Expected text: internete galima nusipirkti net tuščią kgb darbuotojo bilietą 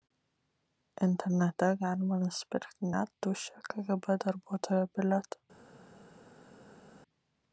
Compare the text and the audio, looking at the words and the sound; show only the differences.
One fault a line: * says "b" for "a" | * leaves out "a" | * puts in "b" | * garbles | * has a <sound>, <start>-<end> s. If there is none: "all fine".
all fine